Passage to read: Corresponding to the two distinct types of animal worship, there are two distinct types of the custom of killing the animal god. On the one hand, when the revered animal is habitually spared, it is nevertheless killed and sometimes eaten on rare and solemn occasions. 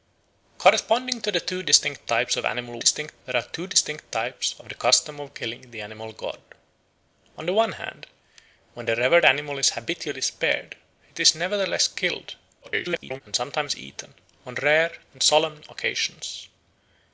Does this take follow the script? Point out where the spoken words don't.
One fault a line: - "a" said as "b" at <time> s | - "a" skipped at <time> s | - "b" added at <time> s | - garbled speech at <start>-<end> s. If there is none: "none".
- "worship" said as "distinct" at 2.8 s
- garbled speech at 12.6-13.2 s